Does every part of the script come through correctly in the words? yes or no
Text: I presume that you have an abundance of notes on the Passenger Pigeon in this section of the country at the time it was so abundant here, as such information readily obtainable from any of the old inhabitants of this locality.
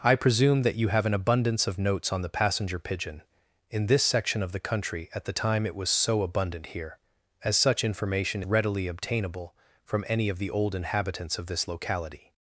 yes